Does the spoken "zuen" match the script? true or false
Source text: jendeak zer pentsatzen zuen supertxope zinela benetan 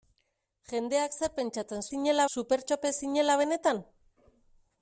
false